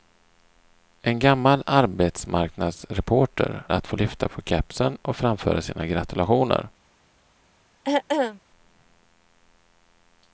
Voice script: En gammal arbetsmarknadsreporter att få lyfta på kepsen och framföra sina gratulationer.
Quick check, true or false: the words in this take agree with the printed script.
true